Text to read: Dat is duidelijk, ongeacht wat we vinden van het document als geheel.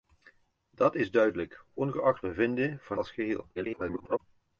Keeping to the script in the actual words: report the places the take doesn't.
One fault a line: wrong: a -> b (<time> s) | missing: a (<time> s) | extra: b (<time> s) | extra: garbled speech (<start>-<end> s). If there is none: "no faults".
missing: wat (2.2 s)
missing: het document (3.0 s)
extra: garbled speech (3.5-4.2 s)